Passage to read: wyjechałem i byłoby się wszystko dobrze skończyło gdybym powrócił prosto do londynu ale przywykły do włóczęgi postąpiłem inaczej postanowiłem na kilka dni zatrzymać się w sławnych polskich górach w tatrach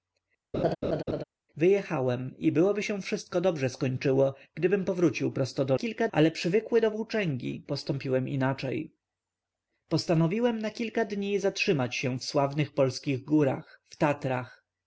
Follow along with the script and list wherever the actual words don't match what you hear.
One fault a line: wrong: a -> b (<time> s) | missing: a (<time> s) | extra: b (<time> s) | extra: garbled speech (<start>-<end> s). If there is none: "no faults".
wrong: londynu -> kilka (5.7 s)